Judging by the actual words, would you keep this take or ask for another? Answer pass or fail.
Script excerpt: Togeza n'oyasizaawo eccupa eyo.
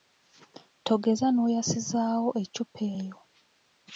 pass